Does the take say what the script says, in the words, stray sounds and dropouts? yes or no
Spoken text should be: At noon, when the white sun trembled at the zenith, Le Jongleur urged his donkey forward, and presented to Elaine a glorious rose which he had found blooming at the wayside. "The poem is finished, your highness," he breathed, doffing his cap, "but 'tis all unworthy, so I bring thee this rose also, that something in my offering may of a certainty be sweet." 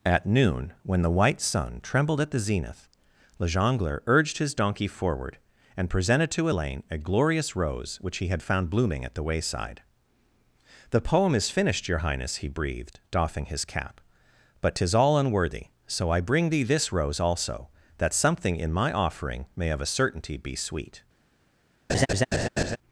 no